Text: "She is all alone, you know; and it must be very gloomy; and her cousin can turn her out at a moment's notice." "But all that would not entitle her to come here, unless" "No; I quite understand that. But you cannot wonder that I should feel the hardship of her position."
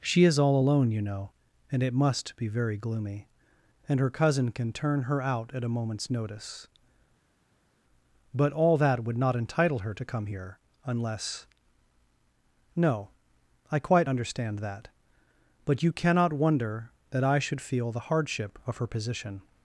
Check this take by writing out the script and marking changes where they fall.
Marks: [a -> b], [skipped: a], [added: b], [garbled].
"She is all alone, you know; and it must be very gloomy; and her cousin can turn her out at a moment's notice." "But all that would not entitle her to come here, unless" "No; I quite understand that. But you cannot wonder that I should feel the hardship of her position."